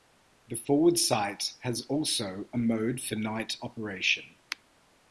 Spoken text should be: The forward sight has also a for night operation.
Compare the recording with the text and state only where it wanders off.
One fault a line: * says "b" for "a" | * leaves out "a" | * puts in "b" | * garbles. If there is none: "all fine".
* puts in "mode"